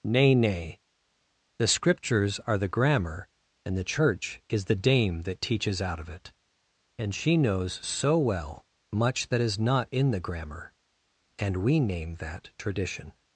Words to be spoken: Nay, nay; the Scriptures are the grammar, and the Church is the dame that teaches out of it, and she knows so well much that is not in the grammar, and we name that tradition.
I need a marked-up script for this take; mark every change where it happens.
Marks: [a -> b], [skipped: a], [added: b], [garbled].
Nay, nay; the Scriptures are the grammar, and the Church is the dame that teaches out of it, and she knows so well much that is not in the grammar, and we name that tradition.